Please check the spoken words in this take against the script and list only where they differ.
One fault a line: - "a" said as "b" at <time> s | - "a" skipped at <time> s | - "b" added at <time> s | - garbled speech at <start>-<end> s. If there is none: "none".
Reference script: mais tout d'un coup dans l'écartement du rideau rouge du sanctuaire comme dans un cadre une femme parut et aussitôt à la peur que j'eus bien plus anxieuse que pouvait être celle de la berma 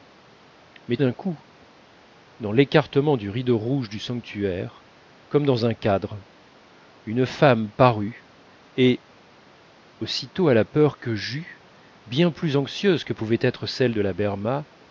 - "tout" skipped at 1.0 s